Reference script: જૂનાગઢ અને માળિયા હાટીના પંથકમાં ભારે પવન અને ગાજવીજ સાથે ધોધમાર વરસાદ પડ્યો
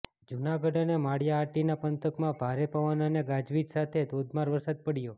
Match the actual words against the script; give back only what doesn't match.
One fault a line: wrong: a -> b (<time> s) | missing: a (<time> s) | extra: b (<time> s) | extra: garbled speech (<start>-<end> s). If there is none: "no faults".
no faults